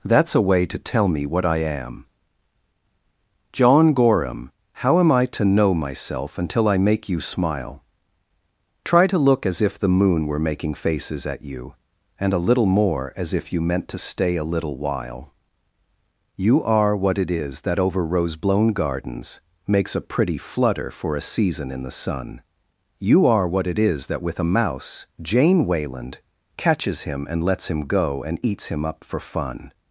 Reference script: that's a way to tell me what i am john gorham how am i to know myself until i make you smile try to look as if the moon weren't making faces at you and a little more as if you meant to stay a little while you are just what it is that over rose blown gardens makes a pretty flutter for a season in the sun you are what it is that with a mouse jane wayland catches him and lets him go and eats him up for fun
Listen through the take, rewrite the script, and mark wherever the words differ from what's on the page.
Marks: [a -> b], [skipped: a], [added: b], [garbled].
that's a way to tell me what i am john gorham how am i to know myself until i make you smile try to look as if the moon [weren't -> were] making faces at you and a little more as if you meant to stay a little while you are [skipped: just] what it is that over rose blown gardens makes a pretty flutter for a season in the sun you are what it is that with a mouse jane wayland catches him and lets him go and eats him up for fun